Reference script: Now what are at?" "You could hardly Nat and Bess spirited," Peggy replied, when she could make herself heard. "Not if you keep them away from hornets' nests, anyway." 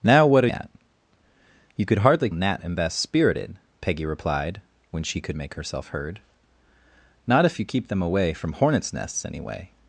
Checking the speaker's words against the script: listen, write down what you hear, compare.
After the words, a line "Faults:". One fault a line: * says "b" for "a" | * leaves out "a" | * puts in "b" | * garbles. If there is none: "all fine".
Now what are at?" "You could hardly Nat and Bess spirited," Peggy replied, when she could make herself heard. "Not if you keep them away from hornets' nests, anyway."
Faults:
all fine